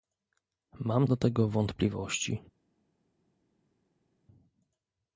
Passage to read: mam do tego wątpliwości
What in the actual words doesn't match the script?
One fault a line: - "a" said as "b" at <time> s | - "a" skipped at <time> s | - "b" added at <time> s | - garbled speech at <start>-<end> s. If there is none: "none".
none